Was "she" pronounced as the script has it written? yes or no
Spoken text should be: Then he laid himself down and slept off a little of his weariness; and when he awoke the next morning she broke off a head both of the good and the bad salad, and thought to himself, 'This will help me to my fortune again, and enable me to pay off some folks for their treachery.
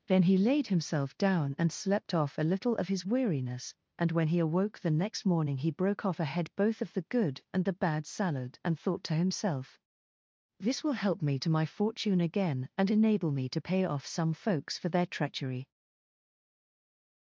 no